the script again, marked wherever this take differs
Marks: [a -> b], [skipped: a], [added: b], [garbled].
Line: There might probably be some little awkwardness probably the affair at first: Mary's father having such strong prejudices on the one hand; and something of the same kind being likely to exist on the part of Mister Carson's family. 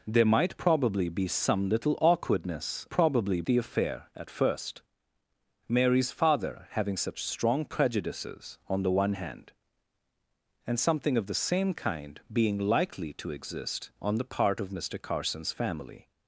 There might probably be some little awkwardness probably the affair at first: Mary's father having such strong prejudices on the one hand; and something of the same kind being likely to exist on the part of Mister Carson's family.